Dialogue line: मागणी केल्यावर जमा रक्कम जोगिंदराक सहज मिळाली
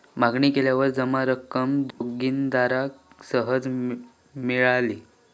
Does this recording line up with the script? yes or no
yes